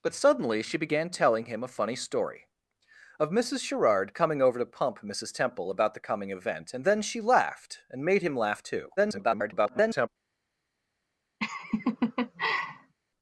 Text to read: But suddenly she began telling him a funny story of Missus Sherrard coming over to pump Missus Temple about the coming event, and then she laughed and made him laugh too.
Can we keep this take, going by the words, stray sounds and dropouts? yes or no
no